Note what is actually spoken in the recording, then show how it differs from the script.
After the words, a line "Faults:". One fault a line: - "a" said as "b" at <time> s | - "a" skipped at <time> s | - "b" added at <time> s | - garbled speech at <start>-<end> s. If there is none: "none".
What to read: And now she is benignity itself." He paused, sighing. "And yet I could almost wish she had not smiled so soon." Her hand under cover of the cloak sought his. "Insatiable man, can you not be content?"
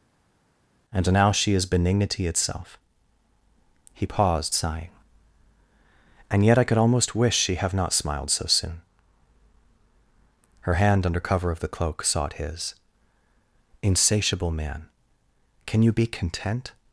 And now she is benignity itself." He paused, sighing. "And yet I could almost wish she have not smiled so soon." Her hand under cover of the cloak sought his. "Insatiable man, can you be content?"
Faults:
- "had" said as "have" at 7.6 s
- "not" skipped at 15.9 s